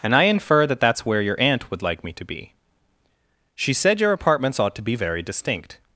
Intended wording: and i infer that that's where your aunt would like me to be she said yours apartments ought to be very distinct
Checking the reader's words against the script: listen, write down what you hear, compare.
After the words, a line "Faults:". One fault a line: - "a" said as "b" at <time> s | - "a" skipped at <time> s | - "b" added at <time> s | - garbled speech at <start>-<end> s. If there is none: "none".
and i infer that that's where your aunt would like me to be she said your apartments ought to be very distinct
Faults:
- "yours" said as "your" at 4.0 s